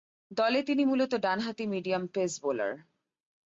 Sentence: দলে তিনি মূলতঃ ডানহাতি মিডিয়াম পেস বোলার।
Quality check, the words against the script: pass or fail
pass